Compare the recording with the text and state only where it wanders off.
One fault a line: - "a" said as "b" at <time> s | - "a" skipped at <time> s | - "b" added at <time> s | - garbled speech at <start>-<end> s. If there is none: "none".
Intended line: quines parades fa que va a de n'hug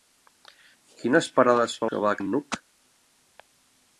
none